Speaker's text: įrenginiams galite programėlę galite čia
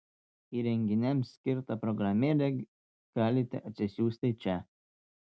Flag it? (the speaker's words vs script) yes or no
yes